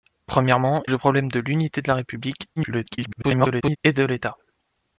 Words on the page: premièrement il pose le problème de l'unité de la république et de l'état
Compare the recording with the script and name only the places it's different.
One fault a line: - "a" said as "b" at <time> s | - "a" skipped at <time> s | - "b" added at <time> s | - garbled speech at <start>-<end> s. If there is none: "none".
- "il pose" skipped at 0.8 s
- garbled speech at 2.6-3.8 s